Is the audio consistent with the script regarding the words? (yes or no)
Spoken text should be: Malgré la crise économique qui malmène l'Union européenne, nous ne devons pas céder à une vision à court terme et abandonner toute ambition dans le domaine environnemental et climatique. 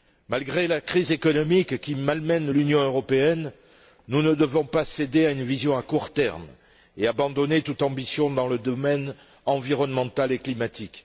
yes